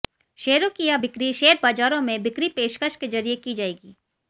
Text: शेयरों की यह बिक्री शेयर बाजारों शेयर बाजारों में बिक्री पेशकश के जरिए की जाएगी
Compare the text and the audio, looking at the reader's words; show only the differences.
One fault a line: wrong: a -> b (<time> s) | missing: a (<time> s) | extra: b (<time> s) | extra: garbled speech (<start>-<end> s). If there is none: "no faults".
missing: शेयर बाजारों (2.0 s)